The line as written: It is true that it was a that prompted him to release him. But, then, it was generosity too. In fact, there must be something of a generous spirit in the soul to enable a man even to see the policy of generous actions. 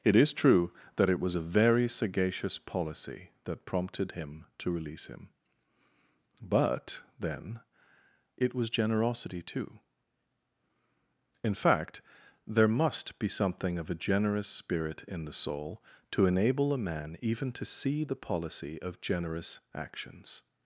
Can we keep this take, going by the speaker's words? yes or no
no